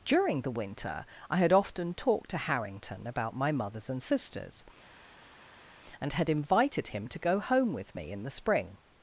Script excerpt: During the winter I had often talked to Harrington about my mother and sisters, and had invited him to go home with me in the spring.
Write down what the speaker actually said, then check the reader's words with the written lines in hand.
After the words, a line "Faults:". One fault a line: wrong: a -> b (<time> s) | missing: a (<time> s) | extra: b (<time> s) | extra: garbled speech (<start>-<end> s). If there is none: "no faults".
During the winter I had often talked to Harrington about my mothers and sisters, and had invited him to go home with me in the spring.
Faults:
wrong: mother -> mothers (3.5 s)